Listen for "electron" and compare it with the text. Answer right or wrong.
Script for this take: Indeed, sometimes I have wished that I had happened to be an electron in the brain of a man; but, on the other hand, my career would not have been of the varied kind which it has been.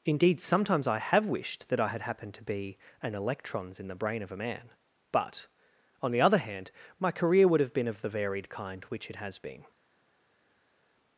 wrong